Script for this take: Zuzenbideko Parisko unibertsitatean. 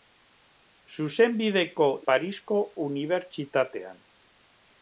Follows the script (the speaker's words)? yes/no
yes